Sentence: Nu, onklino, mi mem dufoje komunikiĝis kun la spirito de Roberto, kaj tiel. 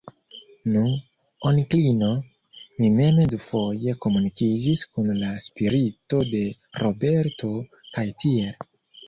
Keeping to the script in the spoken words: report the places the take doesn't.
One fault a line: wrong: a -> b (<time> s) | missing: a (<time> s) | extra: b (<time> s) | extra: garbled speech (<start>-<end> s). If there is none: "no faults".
no faults